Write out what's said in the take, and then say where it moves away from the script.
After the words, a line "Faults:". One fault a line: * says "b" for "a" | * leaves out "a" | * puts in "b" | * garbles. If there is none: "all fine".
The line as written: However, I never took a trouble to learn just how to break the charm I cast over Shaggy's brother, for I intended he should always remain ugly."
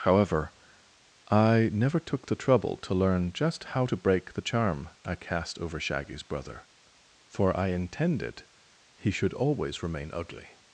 However, I never took the trouble to learn just how to break the charm I cast over Shaggy's brother, for I intended he should always remain ugly."
Faults:
* says "the" for "a"